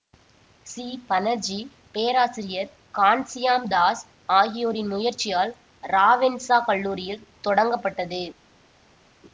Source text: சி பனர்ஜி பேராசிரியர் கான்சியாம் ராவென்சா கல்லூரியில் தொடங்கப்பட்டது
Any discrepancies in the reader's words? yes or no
yes